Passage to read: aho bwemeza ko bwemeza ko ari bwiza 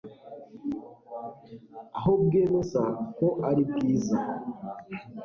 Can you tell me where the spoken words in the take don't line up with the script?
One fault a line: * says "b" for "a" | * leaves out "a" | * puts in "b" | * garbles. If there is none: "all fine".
* leaves out "bwemeza ko"